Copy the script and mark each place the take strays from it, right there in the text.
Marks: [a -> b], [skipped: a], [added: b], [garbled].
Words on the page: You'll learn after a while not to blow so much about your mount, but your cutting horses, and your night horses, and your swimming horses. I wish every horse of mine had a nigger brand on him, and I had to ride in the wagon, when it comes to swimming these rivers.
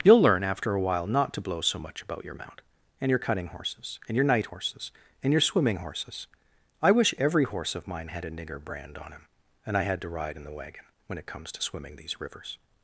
You'll learn after a while not to blow so much about your mount, [but -> and] your cutting horses, and your night horses, and your swimming horses. I wish every horse of mine had a nigger brand on him, and I had to ride in the wagon, when it comes to swimming these rivers.